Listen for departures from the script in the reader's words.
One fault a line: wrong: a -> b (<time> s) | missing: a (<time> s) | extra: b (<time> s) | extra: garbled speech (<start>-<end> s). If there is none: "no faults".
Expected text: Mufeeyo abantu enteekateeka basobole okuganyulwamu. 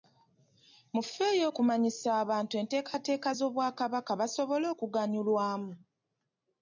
extra: okumanyisa (1.5 s)
extra: z'Obwakabaka (3.4 s)